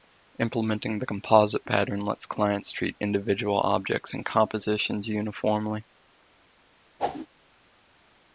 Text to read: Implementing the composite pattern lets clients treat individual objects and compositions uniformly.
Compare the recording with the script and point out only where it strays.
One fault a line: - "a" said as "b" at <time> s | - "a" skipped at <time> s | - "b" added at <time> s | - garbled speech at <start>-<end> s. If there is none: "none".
none